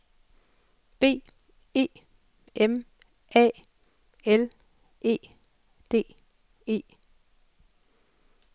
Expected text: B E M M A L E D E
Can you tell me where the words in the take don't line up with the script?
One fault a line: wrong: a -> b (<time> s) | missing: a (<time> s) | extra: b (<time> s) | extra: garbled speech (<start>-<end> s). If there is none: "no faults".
missing: M (2.9 s)